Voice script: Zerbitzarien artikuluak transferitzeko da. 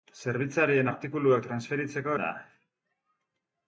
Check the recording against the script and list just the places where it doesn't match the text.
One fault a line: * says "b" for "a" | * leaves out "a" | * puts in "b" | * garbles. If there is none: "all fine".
all fine